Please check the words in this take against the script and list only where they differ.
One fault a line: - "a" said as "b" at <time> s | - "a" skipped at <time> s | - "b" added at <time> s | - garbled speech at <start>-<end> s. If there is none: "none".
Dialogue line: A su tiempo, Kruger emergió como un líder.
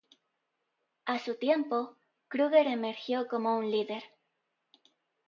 none